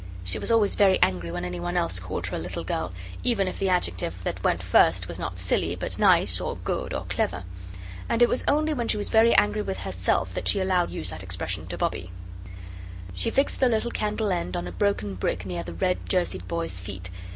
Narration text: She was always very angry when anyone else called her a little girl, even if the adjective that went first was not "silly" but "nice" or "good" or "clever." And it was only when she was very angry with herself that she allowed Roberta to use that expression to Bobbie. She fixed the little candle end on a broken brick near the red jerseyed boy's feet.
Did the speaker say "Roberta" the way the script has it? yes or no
no